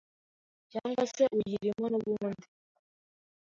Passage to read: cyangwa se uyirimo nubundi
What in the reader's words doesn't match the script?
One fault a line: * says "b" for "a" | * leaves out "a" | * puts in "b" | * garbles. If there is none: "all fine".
all fine